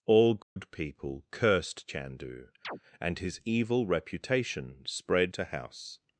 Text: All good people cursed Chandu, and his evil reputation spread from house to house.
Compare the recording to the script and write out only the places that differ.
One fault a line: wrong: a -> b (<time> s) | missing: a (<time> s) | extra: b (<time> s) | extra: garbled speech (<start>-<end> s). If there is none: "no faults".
missing: from house (5.3 s)